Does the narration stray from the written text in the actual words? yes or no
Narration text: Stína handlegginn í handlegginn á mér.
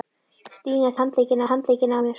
no